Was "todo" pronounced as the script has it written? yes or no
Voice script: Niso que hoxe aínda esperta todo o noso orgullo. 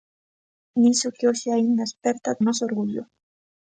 no